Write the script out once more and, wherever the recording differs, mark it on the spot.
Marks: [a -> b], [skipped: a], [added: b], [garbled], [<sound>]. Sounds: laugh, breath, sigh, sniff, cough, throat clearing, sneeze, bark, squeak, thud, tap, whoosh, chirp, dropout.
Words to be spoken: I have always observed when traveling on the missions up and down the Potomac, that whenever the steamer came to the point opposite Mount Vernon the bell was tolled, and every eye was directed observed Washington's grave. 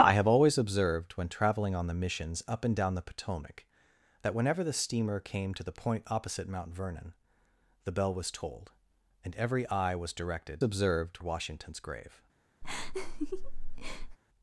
I have always observed when traveling on the missions up and down the Potomac, that whenever the steamer came to the point opposite Mount Vernon the bell was tolled, and every eye was directed observed Washington's grave. [laugh]